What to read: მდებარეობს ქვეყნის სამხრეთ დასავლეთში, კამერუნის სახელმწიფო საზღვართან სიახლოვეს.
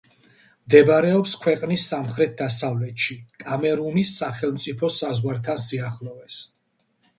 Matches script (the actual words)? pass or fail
pass